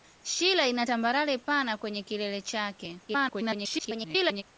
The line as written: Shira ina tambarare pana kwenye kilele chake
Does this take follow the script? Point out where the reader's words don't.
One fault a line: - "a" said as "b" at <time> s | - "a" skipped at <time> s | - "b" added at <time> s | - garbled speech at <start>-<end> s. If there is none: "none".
- garbled speech at 3.1-4.4 s